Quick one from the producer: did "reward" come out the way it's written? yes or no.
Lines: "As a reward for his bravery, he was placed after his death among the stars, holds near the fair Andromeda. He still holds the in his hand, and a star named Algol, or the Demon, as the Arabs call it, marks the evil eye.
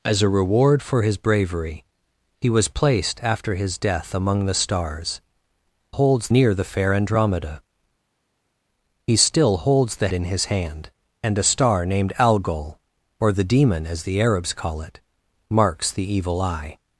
yes